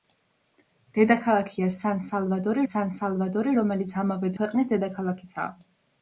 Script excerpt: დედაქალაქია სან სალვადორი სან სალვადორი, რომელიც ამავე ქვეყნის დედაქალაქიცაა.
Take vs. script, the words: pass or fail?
pass